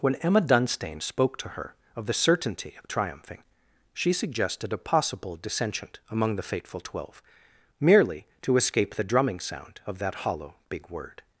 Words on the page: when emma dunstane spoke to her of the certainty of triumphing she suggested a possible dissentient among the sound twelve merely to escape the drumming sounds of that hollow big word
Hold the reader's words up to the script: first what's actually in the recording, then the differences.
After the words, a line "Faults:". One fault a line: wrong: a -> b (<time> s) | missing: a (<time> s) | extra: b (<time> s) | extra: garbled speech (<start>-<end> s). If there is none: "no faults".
when emma dunstane spoke to her of the certainty of triumphing she suggested a possible dissentient among the fateful twelve merely to escape the drumming sound of that hollow big word
Faults:
wrong: sound -> fateful (6.4 s)
wrong: sounds -> sound (9.4 s)